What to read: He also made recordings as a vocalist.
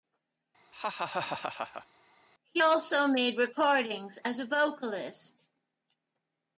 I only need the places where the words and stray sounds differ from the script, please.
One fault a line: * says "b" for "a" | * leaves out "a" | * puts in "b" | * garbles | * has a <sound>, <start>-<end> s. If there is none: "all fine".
* has a laugh, 0.7-1.9 s